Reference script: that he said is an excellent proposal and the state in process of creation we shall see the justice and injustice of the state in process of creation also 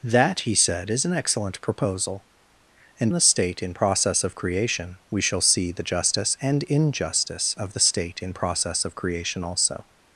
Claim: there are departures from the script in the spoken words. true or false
false